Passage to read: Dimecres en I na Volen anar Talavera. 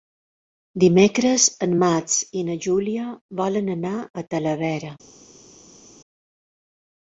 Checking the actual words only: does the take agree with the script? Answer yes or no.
no